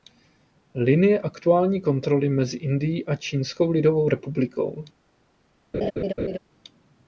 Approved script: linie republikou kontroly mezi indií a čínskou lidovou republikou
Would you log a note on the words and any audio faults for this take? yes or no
yes